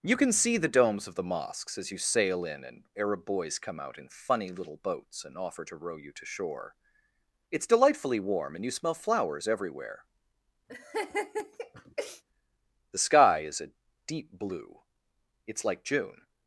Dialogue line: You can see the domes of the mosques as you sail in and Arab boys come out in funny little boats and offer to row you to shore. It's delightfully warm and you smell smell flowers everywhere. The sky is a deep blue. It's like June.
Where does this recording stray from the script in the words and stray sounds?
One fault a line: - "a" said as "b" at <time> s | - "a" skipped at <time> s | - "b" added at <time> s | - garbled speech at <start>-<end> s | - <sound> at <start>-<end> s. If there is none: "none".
- "smell" skipped at 8.9 s
- laugh at 10.7-12.2 s